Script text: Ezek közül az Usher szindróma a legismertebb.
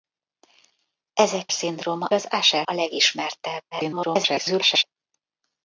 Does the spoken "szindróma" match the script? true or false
false